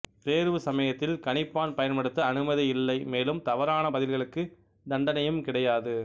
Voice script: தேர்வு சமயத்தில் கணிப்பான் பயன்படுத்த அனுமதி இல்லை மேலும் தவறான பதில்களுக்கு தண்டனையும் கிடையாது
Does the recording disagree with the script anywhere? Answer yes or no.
no